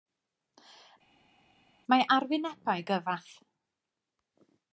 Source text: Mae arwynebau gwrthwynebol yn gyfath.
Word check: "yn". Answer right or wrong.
wrong